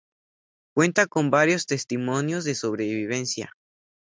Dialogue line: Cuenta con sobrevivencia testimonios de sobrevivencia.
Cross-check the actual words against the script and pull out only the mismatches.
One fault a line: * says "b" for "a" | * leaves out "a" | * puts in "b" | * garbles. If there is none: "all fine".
* says "varios" for "sobrevivencia"